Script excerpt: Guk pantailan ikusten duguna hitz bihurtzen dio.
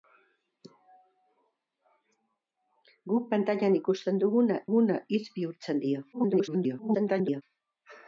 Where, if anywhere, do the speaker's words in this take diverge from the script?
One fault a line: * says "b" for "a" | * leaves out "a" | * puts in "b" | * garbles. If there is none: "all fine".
* puts in "duguna"
* garbles